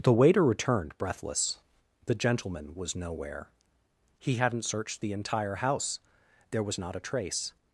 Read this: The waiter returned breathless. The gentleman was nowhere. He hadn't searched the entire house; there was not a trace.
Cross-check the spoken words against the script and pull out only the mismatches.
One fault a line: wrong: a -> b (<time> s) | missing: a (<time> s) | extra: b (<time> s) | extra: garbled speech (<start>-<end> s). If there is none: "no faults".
no faults